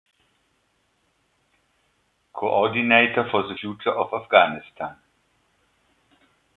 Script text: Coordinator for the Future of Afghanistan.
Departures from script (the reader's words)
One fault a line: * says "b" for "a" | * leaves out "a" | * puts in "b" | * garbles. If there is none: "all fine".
all fine